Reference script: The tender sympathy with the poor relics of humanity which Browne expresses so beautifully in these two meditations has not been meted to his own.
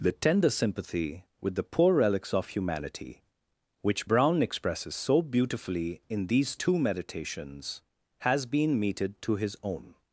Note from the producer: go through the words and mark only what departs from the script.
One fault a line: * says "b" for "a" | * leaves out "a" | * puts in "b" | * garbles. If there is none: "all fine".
* leaves out "not"